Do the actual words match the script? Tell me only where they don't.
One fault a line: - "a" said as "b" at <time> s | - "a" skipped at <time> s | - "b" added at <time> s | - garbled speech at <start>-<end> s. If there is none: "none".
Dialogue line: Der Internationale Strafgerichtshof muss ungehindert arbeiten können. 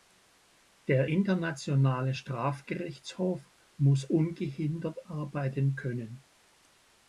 none